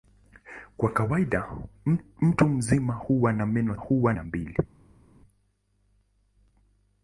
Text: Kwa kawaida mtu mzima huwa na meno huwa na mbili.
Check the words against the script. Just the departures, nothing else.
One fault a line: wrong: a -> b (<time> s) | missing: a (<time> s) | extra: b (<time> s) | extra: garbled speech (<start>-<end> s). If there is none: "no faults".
no faults